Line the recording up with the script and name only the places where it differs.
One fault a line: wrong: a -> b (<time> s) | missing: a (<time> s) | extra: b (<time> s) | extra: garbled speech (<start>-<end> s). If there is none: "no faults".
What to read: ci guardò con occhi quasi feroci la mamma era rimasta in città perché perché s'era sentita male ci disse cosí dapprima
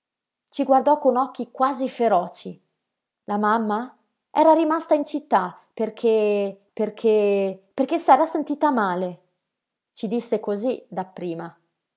extra: perché (7.7 s)